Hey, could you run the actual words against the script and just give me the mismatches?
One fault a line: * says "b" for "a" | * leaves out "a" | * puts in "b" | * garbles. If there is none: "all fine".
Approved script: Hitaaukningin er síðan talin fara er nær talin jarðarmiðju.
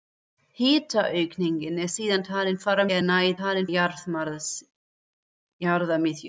all fine